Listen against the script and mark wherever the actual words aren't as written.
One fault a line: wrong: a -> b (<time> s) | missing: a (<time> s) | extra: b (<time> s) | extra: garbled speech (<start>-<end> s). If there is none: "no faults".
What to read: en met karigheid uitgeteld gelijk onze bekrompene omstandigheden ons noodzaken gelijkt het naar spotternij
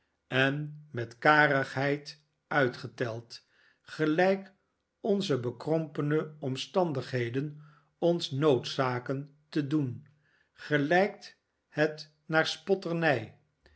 extra: te doen (9.5 s)